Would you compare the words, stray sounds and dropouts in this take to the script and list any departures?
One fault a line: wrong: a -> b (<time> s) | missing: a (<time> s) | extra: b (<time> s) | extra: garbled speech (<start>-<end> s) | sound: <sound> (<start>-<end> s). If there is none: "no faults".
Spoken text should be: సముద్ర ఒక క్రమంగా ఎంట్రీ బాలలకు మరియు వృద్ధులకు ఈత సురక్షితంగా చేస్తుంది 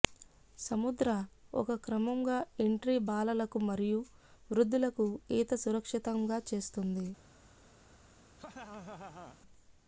sound: laugh (8.4-9.4 s)